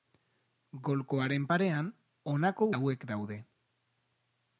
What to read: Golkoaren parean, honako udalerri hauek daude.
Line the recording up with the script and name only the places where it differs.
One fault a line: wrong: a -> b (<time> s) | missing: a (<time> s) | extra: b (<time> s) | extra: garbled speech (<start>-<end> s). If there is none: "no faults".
missing: udalerri (2.7 s)